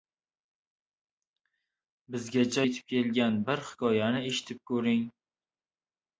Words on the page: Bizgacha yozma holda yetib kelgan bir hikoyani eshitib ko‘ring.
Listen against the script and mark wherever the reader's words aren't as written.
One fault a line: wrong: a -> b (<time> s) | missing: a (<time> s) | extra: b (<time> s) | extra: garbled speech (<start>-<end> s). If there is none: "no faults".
missing: yozma holda (2.6 s)